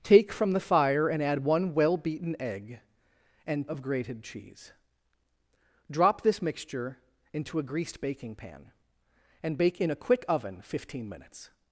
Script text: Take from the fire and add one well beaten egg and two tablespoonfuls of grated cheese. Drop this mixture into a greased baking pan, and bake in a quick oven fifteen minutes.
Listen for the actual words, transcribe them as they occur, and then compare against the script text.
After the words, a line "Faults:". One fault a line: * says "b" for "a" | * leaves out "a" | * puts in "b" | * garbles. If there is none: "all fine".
Take from the fire and add one well beaten egg and of grated cheese. Drop this mixture into a greased baking pan, and bake in a quick oven fifteen minutes.
Faults:
* leaves out "two tablespoonfuls"